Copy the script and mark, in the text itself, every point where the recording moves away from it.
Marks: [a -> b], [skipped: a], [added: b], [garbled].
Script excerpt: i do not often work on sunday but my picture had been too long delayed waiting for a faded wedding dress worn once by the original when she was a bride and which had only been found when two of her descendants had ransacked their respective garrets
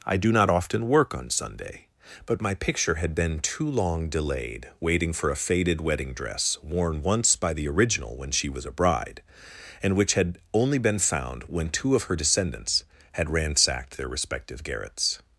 i do not often work on sunday but my picture had been too long delayed waiting for a faded wedding dress worn once by the original when she was a bride and which had only been found when two of her descendants had ransacked their respective garrets